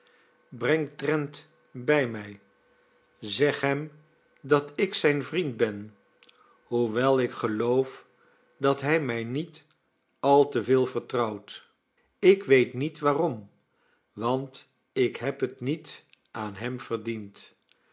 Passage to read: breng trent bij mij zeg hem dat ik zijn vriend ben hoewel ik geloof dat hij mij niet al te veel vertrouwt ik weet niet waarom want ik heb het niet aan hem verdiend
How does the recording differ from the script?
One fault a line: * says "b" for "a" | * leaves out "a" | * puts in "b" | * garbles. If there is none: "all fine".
all fine